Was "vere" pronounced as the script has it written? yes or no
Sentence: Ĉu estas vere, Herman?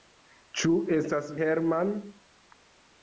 no